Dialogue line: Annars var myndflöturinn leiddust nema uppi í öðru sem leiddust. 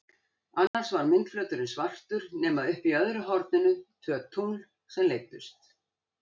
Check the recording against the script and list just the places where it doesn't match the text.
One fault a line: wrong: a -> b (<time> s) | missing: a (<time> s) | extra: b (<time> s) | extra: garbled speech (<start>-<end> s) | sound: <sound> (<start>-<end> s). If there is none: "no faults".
sound: dropout (0.7-0.7 s)
wrong: leiddust -> svartur (1.7 s)
extra: horninu tvö tungl (3.3 s)